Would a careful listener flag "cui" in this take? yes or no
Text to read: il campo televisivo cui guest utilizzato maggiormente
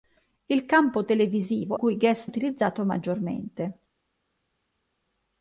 no